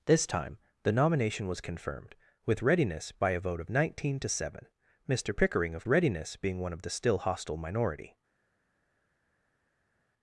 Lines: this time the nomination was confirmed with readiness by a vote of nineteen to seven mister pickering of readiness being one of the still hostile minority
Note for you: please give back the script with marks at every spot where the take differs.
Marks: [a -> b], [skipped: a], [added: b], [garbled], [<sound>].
this time the nomination was confirmed with readiness by a vote of nineteen to seven mister pickering of readiness being one of the still hostile minority